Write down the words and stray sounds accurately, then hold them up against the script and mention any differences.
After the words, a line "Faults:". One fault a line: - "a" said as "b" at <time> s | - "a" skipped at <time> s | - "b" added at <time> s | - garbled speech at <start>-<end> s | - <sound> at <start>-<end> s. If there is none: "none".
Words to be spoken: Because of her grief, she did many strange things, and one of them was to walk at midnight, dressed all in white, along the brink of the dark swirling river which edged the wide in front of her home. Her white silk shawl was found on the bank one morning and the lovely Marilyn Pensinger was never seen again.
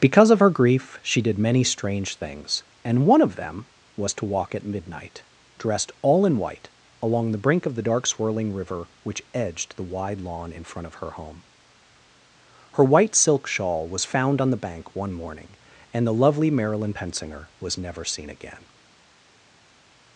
Because of her grief, she did many strange things, and one of them was to walk at midnight, dressed all in white, along the brink of the dark swirling river which edged the wide lawn in front of her home. Her white silk shawl was found on the bank one morning and the lovely Marilyn Pensinger was never seen again.
Faults:
- "lawn" added at 10.2 s